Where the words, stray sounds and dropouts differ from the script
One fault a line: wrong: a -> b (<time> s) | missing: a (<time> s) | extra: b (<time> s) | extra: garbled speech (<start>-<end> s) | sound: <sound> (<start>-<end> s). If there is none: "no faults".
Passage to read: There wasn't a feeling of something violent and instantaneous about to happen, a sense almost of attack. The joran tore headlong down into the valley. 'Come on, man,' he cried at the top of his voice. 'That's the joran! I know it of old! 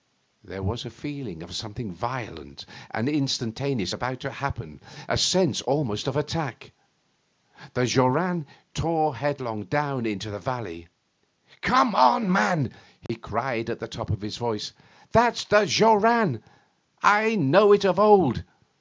wrong: wasn't -> was (0.6 s)
sound: dropout (13.1-13.1 s)